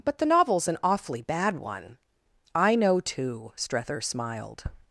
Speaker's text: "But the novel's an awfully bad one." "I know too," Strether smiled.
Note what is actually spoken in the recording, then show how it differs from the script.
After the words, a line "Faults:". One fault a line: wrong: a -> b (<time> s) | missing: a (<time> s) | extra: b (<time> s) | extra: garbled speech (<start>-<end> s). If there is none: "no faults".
"But the novel's an awfully bad one." "I know too," Strether smiled.
Faults:
no faults